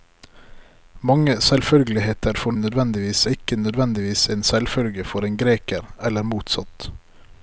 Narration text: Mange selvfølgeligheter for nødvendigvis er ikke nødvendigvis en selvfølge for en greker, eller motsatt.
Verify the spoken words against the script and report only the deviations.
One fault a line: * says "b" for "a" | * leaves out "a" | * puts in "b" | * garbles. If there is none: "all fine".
all fine